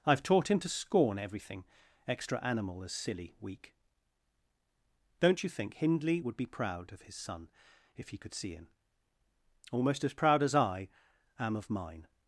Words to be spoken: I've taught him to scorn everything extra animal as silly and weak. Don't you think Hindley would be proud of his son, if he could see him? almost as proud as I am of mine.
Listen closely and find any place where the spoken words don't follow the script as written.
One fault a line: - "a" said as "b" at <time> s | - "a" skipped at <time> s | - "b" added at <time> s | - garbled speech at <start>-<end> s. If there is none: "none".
- "and" skipped at 3.4 s